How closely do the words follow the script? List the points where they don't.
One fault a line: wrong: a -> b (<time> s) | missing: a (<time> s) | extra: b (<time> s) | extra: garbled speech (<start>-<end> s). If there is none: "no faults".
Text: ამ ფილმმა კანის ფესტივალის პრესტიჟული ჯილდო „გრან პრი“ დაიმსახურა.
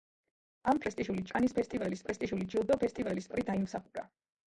wrong: ფილმმა -> პრესტიჟული (0.9 s)
wrong: გრან -> ფესტივალის (2.8 s)